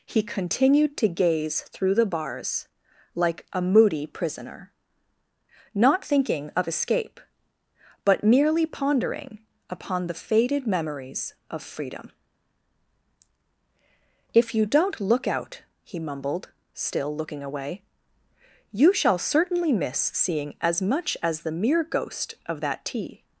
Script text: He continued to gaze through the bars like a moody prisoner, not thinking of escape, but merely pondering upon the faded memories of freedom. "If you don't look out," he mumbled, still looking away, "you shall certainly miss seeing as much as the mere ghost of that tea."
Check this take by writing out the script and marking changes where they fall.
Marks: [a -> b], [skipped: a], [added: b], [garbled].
He continued to gaze through the bars like a moody prisoner, not thinking of escape, but merely pondering upon the faded memories of freedom. "If you don't look out," he mumbled, still looking away, "you shall certainly miss seeing as much as the mere ghost of that tea."